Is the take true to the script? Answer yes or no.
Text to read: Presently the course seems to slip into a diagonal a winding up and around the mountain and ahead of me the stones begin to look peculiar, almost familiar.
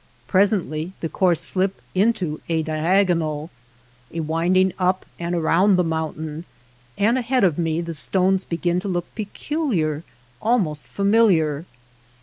no